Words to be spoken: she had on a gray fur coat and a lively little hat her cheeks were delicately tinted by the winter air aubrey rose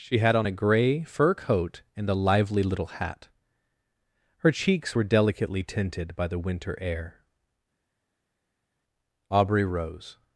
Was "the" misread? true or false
false